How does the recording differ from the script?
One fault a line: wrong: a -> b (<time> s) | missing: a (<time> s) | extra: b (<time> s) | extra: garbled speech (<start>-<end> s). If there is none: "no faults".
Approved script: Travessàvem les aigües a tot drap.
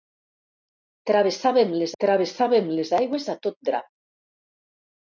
extra: travessàvem les (2.0 s)